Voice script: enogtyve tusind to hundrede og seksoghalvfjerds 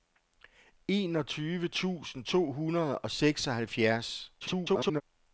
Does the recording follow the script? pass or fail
fail